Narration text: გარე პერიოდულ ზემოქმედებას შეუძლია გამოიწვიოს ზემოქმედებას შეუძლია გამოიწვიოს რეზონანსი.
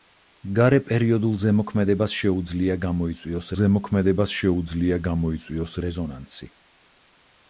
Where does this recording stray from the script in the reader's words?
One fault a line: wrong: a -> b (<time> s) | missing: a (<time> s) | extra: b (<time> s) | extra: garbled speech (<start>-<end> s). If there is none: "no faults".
no faults